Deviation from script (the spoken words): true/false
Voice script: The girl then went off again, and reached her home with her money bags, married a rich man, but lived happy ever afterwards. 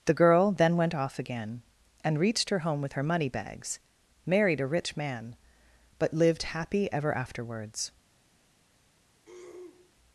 false